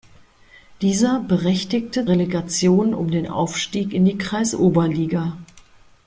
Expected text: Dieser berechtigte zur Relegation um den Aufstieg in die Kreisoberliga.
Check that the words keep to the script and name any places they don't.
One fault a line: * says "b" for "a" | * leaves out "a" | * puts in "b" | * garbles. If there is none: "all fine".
* leaves out "zur"